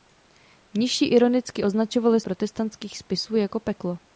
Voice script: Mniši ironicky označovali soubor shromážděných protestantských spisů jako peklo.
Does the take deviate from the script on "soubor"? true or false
true